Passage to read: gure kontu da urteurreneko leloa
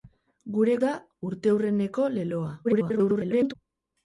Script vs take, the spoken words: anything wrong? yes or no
yes